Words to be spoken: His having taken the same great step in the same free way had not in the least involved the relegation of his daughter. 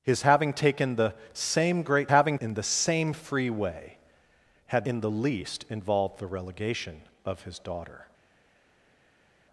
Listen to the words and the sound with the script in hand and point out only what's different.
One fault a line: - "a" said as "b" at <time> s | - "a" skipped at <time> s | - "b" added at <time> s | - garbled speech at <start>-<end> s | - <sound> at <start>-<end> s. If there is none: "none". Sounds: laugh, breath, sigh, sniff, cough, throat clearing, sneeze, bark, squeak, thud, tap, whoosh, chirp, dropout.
- "step" said as "having" at 2.1 s
- "not" skipped at 4.9 s